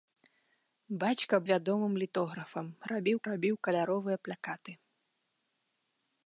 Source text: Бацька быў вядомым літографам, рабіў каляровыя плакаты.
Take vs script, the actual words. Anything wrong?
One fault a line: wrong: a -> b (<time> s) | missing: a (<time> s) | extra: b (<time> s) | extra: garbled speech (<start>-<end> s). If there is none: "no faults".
missing: быў (1.4 s)
extra: рабіў (3.3 s)